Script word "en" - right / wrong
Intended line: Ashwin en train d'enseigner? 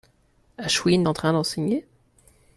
right